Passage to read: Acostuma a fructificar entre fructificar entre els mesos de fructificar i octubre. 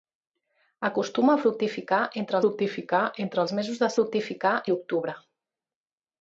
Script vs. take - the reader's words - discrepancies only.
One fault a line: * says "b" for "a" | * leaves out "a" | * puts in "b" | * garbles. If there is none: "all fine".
all fine